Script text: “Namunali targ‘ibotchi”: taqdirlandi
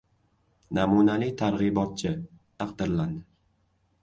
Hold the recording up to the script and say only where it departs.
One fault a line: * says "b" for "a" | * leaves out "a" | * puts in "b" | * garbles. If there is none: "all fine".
all fine